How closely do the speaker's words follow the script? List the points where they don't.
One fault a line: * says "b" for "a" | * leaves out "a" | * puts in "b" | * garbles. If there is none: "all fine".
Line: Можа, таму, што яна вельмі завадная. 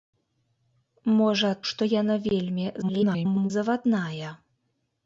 * leaves out "таму"
* garbles